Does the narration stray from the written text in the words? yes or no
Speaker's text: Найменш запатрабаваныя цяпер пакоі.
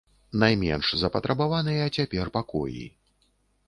no